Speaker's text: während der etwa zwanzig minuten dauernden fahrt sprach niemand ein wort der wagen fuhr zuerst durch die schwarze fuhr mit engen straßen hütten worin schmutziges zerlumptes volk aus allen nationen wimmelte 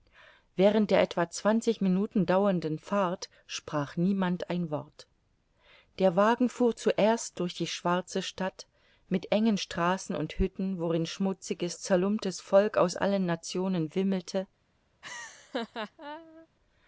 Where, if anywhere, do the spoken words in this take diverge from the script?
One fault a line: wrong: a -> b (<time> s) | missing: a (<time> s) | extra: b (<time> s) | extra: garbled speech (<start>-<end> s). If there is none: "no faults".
wrong: fuhr -> stadt (8.2 s)
extra: und (10.1 s)